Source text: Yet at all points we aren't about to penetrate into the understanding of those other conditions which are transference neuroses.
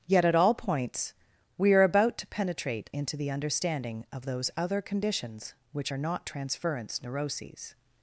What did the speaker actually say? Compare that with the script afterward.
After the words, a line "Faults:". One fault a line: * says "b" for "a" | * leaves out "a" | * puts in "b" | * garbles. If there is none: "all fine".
Yet at all points we are about to penetrate into the understanding of those other conditions which are not transference neuroses.
Faults:
* says "are" for "aren't"
* puts in "not"